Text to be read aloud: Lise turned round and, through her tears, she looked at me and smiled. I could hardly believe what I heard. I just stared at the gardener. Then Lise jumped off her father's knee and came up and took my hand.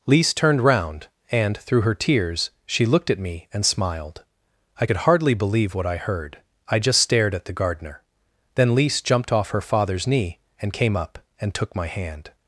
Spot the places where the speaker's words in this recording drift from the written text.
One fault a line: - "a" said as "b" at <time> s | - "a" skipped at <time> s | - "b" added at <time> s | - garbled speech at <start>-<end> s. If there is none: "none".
none